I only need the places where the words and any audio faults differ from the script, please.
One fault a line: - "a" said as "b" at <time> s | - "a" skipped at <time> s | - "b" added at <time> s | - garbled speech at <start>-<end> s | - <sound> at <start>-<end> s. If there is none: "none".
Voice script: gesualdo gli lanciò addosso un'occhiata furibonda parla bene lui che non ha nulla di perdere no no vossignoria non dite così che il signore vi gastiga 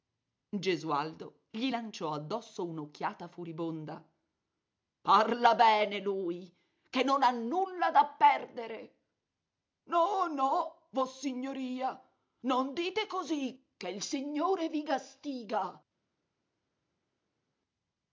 - "di" said as "da" at 7.9 s